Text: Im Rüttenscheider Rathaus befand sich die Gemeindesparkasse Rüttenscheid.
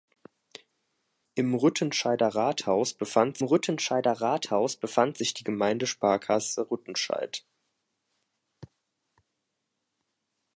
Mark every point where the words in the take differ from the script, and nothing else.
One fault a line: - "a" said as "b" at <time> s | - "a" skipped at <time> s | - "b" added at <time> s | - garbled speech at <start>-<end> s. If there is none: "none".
- "Rüttenscheider Rathaus befand" added at 3.4 s